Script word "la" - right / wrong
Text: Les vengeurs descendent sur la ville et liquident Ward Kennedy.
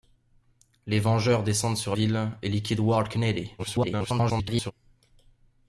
wrong